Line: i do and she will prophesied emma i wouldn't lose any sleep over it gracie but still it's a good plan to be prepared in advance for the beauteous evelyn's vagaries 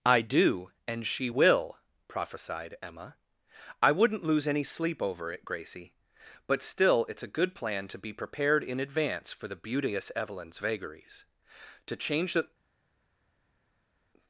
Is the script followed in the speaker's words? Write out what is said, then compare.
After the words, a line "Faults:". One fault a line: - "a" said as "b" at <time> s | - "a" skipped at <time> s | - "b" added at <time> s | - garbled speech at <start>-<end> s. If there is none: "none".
i do and she will prophesied emma i wouldn't lose any sleep over it gracie but still it's a good plan to be prepared in advance for the beauteous evelyn's vagaries to change the
Faults:
- "to change the" added at 11.9 s